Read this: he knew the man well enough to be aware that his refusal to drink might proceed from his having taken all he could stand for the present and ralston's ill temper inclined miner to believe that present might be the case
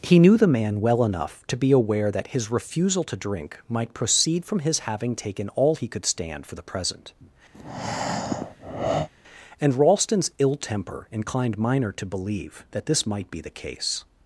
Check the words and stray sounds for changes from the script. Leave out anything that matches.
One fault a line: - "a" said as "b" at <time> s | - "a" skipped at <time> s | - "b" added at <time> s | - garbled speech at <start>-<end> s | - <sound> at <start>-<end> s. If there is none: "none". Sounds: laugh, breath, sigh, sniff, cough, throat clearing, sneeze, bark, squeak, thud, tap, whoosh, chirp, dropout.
- breath at 7.5-9.1 s
- "present" said as "this" at 12.9 s